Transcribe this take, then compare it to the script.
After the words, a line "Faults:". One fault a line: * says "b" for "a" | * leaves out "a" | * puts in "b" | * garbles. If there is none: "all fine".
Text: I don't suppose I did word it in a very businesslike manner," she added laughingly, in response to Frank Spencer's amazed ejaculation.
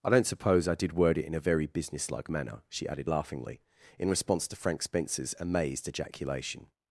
I don't suppose I did word it in a very businesslike manner," she added laughingly, in response to Frank Spencer's amazed ejaculation.
Faults:
all fine